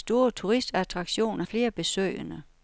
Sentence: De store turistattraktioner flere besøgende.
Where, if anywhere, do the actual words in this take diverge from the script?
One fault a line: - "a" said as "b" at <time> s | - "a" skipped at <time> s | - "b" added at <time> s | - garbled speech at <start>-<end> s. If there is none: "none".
none